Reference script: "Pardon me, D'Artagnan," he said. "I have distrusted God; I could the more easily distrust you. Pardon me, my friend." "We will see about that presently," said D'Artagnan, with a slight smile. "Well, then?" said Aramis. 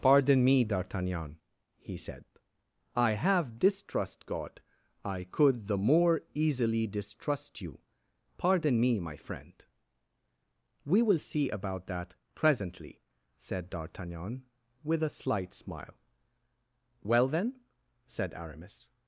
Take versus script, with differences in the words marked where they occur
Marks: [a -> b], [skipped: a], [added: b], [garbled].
"Pardon me, D'Artagnan," he said. "I have [distrusted -> distrust] God; I could the more easily distrust you. Pardon me, my friend." "We will see about that presently," said D'Artagnan, with a slight smile. "Well, then?" said Aramis.